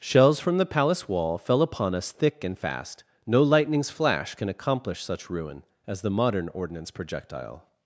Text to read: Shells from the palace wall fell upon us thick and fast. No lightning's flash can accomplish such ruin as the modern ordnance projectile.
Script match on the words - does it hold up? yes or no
yes